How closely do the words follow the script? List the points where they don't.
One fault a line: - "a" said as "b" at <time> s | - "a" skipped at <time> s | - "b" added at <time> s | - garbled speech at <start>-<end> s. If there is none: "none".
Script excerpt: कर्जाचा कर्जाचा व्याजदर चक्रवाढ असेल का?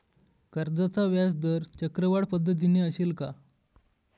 - "कर्जाचा" skipped at 1.0 s
- "पद्धतीने" added at 2.3 s